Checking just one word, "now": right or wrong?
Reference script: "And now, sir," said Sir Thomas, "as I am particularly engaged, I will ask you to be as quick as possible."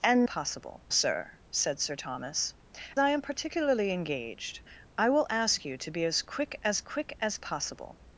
wrong